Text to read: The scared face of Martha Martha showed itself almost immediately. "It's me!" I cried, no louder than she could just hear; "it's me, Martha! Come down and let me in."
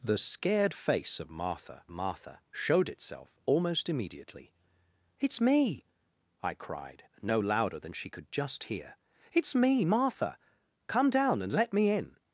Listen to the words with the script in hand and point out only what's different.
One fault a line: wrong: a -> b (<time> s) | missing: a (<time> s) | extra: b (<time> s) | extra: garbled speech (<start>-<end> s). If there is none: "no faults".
no faults